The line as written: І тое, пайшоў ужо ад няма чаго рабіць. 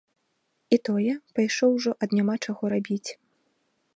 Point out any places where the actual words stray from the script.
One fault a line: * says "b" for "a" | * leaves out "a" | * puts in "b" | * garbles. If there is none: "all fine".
all fine